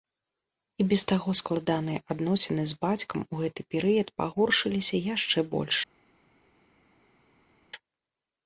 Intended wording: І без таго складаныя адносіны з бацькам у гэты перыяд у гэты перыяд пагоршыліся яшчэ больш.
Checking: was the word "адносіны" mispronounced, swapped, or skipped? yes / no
no